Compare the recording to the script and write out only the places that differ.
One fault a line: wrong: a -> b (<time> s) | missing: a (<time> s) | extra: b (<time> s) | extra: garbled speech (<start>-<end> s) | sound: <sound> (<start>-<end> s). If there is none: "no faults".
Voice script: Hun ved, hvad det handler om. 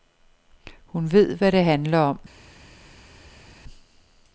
no faults